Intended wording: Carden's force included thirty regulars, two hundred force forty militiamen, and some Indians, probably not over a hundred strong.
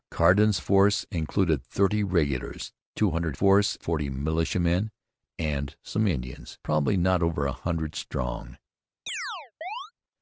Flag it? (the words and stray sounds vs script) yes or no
yes